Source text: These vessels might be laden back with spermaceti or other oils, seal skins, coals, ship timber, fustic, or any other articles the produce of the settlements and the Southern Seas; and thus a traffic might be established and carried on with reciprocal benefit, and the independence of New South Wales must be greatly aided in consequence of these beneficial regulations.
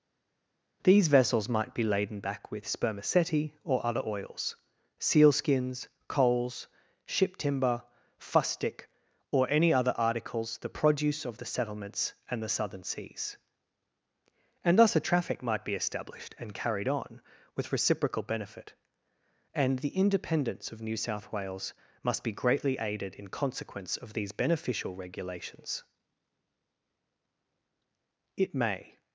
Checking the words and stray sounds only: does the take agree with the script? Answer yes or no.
no